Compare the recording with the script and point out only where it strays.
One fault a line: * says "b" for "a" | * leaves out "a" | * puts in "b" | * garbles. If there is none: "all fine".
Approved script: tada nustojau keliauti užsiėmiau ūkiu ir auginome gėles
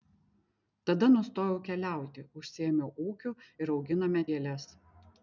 all fine